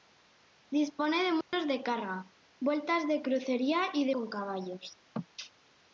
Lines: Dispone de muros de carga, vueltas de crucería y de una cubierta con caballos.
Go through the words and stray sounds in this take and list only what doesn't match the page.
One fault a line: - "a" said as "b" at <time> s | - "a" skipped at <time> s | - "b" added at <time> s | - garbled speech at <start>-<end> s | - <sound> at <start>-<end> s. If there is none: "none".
- dropout at 1.4-1.5 s
- "una cubierta" skipped at 4.2 s